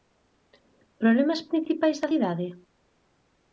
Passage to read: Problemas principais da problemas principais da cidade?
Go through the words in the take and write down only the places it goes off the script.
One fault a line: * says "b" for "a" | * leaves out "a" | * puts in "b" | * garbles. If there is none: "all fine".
* leaves out "problemas principais da"